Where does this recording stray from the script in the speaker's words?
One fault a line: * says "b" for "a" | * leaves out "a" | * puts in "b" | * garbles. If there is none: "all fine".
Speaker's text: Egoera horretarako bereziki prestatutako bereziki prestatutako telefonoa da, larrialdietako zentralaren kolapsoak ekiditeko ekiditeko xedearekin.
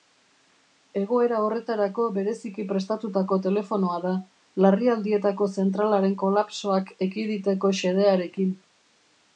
* leaves out "bereziki prestatutako"
* leaves out "ekiditeko"